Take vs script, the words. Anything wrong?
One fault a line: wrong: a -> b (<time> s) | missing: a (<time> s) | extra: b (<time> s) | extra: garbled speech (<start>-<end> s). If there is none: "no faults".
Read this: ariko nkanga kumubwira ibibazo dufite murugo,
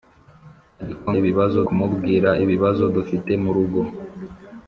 wrong: nkanga -> ibibazo (1.2 s)